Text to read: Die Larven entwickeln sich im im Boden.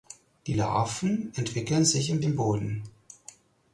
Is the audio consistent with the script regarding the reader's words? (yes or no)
yes